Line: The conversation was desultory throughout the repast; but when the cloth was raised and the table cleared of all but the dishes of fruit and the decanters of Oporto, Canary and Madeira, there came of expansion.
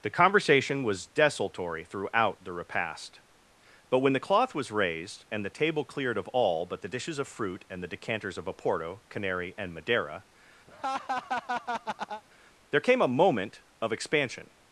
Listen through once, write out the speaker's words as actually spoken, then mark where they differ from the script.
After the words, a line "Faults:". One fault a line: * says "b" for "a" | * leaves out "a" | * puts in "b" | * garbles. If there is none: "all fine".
The conversation was desultory throughout the repast; but when the cloth was raised and the table cleared of all but the dishes of fruit and the decanters of Oporto, Canary and Madeira, there came a moment of expansion.
Faults:
* puts in "a moment"